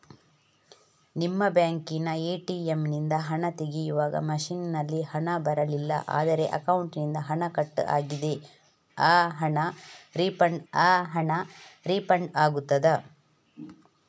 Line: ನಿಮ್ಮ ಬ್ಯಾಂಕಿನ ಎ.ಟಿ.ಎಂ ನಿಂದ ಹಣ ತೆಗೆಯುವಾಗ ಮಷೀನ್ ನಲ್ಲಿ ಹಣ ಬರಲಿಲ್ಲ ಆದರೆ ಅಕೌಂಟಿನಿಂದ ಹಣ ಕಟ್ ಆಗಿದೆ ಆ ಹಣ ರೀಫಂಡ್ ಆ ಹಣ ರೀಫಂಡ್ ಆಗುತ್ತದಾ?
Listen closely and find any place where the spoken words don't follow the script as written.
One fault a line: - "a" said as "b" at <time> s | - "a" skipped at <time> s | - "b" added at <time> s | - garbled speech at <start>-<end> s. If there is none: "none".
none